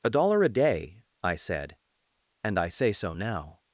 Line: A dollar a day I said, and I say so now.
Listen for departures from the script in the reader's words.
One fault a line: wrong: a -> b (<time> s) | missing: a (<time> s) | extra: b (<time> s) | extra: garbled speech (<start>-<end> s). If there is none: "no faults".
no faults